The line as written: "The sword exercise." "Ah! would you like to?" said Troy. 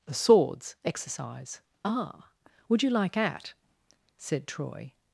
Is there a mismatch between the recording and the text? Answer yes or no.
yes